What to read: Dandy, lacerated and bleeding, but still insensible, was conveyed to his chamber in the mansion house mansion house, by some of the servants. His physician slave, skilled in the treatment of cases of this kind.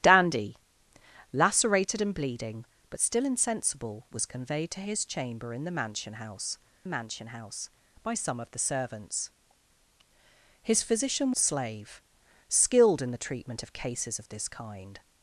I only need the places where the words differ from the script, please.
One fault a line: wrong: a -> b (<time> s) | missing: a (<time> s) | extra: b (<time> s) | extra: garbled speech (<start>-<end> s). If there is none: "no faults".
no faults